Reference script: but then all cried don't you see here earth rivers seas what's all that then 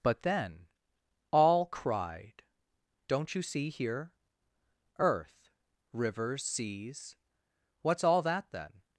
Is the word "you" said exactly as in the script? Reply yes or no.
yes